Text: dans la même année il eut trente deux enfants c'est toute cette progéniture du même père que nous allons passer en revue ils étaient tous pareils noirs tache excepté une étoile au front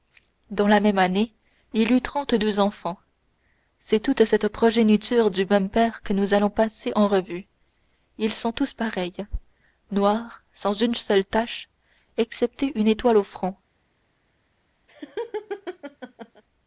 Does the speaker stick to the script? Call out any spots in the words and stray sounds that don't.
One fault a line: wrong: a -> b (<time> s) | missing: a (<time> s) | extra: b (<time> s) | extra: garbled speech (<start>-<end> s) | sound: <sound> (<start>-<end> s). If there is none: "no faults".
wrong: étaient -> sont (8.3 s)
extra: sans une seule (10.5 s)
sound: laugh (14.9-16.4 s)